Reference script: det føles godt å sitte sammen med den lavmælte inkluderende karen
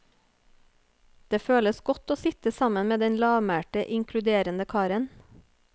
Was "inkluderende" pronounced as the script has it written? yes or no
yes